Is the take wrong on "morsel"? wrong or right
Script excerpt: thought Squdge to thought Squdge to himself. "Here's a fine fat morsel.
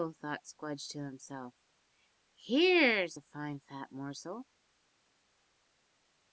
right